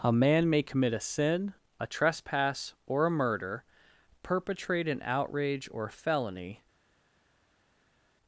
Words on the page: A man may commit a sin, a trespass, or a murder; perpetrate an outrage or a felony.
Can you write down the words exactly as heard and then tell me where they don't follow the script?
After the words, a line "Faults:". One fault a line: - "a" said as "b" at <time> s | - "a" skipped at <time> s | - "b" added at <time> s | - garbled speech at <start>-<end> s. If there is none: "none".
A man may commit a sin, a trespass, or a murder; perpetrate an outrage or felony.
Faults:
- "a" skipped at 5.9 s